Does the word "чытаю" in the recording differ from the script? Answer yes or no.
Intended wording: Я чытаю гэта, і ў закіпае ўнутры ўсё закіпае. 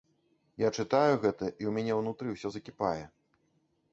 no